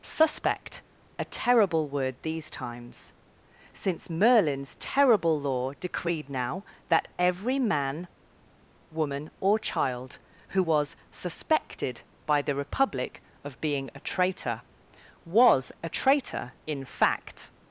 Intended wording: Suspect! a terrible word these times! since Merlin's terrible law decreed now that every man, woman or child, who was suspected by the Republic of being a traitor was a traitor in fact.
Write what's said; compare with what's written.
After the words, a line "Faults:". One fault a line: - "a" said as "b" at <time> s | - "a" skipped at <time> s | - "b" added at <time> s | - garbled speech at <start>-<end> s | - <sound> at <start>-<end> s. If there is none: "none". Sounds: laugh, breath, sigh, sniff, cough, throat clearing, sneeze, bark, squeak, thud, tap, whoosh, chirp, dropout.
Suspect! a terrible word these times! since Merlin's terrible law decreed now that every man, woman or child, who was suspected by the Republic of being a traitor was a traitor in fact.
Faults:
none